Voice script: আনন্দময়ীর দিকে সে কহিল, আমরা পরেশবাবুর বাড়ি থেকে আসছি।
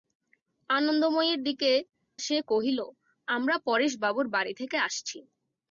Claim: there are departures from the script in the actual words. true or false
false